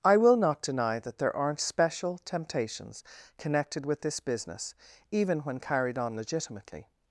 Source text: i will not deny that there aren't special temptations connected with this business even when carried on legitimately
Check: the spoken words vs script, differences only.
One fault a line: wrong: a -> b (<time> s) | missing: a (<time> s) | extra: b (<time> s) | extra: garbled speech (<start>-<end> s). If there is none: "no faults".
no faults